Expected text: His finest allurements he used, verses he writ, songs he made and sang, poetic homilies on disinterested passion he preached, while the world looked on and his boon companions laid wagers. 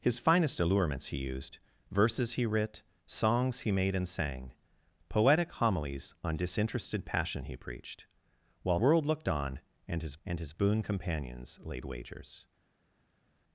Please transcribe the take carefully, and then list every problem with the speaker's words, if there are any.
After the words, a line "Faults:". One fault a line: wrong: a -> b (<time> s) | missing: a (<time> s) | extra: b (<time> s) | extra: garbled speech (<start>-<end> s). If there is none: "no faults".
His finest allurements he used, verses he writ, songs he made and sang, poetic homilies on disinterested passion he preached, while world looked on and his and his boon companions laid wagers.
Faults:
missing: the (8.8 s)
extra: and his (10.2 s)